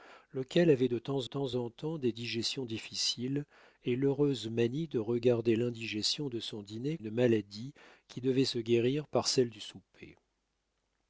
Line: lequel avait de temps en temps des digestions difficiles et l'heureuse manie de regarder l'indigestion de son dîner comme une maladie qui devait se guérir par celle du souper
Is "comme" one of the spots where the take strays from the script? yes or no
yes